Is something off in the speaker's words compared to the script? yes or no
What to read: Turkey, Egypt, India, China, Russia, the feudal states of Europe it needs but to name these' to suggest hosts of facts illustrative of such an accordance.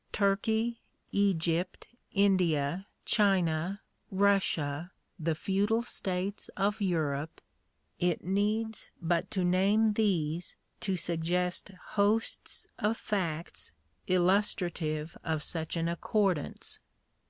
no